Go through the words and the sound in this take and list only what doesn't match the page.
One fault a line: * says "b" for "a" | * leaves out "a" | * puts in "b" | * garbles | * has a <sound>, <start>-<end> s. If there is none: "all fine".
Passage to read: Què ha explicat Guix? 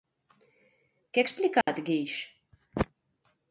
* has a dropout, 1.6-1.7 s